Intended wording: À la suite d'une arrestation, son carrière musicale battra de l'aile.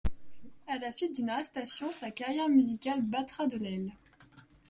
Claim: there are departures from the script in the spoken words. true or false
true